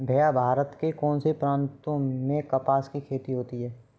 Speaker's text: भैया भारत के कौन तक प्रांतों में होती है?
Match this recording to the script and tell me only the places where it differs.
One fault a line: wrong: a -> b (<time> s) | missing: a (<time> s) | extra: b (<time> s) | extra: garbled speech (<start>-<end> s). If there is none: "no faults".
wrong: तक -> से (1.2 s)
extra: कपास की खेती (2.5 s)